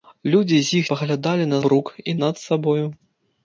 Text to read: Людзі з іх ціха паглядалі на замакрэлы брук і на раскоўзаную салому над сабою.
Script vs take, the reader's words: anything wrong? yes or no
yes